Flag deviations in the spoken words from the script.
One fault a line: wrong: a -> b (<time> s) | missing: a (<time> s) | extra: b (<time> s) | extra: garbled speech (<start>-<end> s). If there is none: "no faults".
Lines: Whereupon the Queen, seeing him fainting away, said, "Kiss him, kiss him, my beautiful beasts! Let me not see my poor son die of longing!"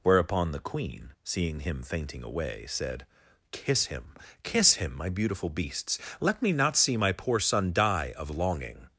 no faults